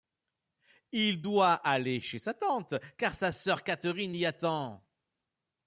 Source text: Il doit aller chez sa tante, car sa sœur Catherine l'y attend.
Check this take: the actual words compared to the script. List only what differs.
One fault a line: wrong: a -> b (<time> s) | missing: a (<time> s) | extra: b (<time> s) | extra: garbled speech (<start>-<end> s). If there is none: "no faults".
no faults